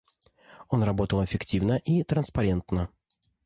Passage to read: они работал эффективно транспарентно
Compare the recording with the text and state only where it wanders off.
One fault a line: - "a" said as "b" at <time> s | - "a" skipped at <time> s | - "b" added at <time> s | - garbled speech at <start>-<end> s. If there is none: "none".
- "они" said as "он" at 0.7 s
- "и" added at 1.8 s